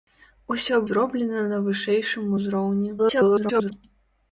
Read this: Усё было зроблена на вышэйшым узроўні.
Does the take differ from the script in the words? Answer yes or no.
yes